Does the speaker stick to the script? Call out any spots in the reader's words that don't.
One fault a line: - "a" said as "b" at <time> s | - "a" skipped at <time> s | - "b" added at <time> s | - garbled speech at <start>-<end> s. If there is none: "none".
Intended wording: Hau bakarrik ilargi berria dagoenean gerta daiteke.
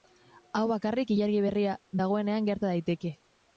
none